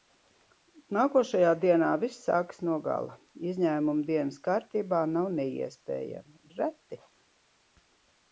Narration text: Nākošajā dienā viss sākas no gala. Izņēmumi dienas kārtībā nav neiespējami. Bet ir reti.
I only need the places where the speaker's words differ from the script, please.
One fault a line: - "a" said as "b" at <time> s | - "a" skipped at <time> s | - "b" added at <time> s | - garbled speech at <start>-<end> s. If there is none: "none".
- "Bet" skipped at 6.4 s